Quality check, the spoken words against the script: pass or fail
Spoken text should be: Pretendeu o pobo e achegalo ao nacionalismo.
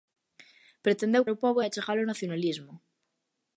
pass